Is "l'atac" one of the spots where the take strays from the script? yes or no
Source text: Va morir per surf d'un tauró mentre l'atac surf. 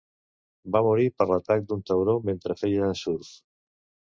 yes